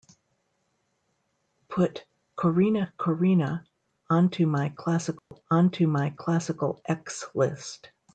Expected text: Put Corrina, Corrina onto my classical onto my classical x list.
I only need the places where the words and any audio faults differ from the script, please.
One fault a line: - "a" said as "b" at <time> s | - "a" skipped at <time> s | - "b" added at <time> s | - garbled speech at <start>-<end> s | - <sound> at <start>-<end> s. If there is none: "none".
- dropout at 5.2-5.3 s